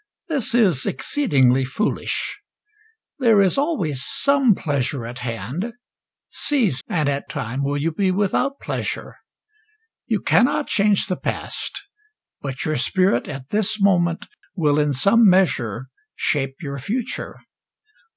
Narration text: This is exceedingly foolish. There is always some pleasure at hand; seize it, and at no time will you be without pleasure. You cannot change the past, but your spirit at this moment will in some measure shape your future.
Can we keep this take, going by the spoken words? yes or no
no